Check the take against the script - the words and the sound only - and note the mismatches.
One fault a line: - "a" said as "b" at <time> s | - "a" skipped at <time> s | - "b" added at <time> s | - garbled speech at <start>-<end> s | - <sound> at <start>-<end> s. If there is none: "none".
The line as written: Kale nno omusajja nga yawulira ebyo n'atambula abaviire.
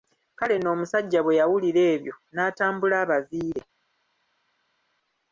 - "nga" said as "bwe" at 1.2 s